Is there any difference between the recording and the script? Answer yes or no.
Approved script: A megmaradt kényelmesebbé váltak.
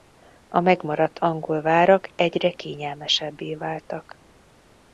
yes